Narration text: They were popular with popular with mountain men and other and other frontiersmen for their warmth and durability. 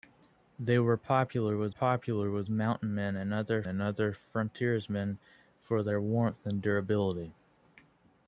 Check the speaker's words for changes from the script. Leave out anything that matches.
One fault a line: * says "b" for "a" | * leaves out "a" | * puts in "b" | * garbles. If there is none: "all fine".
all fine